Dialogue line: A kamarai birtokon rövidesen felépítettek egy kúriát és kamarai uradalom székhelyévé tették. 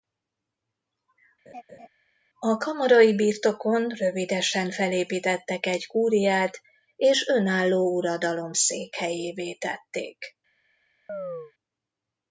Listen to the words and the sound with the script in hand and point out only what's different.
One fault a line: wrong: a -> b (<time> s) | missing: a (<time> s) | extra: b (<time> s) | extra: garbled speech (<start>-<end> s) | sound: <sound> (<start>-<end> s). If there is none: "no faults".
sound: laugh (1.5-1.9 s)
wrong: kamarai -> önálló (7.3 s)
sound: chirp (11.1-11.5 s)